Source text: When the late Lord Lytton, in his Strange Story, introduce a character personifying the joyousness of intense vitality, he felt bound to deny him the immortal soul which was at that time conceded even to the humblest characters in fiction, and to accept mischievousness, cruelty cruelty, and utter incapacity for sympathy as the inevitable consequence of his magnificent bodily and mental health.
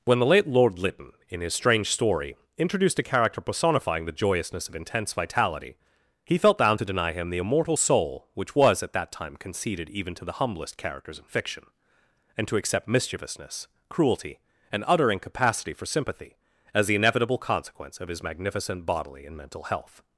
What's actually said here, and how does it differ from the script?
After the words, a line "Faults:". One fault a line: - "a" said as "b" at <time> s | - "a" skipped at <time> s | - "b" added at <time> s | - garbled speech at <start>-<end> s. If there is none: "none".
When the late Lord Lytton, in his Strange Story, introduced a character personifying the joyousness of intense vitality, he felt bound to deny him the immortal soul which was at that time conceded even to the humblest characters in fiction, and to accept mischievousness, cruelty, and utter incapacity for sympathy as the inevitable consequence of his magnificent bodily and mental health.
Faults:
- "introduce" said as "introduced" at 2.6 s
- "cruelty" skipped at 14.4 s